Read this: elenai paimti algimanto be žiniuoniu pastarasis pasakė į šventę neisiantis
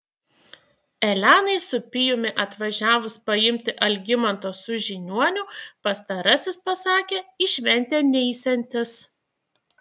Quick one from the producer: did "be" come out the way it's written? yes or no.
no